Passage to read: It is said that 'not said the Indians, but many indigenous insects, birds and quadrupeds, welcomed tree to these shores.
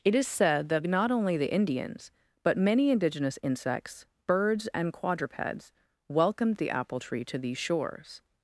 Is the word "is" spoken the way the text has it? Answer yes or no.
yes